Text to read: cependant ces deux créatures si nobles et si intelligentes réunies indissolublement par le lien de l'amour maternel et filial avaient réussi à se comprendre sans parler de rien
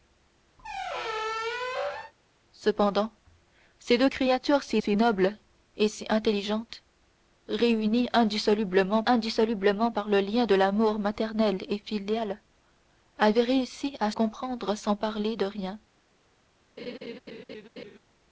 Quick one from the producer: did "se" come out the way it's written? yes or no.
no